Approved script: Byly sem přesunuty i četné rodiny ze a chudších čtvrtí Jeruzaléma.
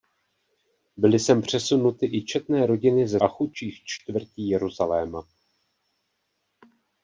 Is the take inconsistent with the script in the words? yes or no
no